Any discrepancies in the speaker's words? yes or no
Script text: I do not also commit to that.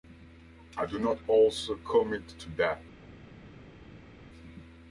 no